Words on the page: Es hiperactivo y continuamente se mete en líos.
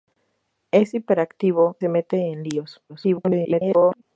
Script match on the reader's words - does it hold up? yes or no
no